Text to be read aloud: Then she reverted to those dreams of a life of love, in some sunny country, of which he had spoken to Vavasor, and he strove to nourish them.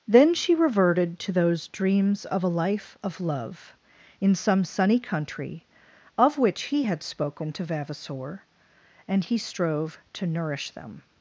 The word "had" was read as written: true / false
true